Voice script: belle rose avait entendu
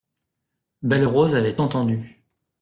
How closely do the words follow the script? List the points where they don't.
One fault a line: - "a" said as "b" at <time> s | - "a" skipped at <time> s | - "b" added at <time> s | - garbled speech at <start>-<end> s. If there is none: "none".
none